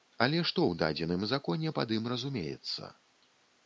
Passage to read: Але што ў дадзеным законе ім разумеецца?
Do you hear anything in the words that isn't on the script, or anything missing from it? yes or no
yes